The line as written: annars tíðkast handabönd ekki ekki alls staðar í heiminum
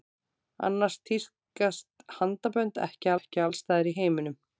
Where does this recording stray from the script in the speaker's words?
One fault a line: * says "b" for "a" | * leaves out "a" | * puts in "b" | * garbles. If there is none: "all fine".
all fine